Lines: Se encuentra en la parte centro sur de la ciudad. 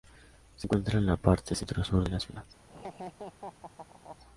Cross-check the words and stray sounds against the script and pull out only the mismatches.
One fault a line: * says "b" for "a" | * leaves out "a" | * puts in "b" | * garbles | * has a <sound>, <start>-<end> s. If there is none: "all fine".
* has a laugh, 2.7-4.2 s